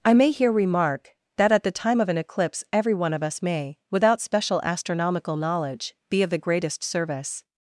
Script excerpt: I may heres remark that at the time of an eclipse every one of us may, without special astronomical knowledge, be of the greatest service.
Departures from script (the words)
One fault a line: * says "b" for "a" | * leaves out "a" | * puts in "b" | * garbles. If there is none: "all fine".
* says "here" for "heres"